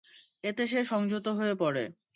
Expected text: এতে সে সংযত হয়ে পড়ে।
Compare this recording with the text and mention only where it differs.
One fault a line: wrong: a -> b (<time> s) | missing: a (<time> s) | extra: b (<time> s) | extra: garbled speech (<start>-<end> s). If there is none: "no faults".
no faults